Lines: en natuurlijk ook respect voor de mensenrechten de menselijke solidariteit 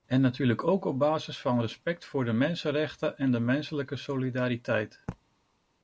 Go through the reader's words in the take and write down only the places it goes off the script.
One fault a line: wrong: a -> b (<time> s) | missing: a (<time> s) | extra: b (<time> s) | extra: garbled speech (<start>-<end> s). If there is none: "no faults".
extra: op basis van (0.8 s)
extra: en (3.2 s)